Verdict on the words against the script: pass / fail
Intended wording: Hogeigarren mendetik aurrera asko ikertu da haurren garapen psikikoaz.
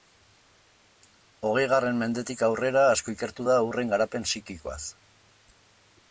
pass